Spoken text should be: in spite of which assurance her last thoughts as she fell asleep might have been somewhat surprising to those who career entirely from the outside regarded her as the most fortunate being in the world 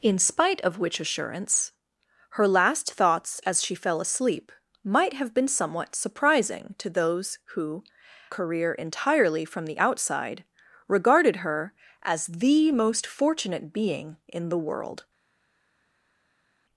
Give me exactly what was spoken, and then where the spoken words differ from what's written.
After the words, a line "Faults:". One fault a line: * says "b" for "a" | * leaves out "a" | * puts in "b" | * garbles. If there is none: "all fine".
in spite of which assurance her last thoughts as she fell asleep might have been somewhat surprising to those who career entirely from the outside regarded her as the most fortunate being in the world
Faults:
all fine